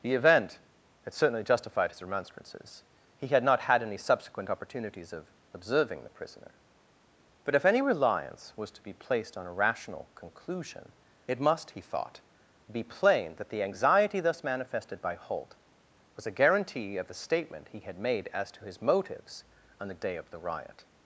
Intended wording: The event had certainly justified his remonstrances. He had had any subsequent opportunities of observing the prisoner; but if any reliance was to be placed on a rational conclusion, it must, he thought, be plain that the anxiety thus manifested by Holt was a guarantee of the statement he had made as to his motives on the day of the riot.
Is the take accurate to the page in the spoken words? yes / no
no